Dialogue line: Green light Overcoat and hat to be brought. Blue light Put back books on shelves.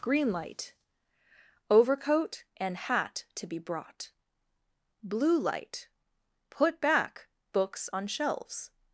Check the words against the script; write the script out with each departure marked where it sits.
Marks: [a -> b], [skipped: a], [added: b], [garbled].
Green light Overcoat and hat to be brought. Blue light Put back books on shelves.